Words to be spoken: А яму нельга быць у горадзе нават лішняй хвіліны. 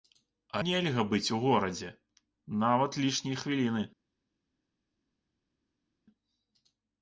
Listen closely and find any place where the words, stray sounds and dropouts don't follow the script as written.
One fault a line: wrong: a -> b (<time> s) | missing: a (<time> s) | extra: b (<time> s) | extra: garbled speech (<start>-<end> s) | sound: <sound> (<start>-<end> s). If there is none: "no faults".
missing: яму (0.6 s)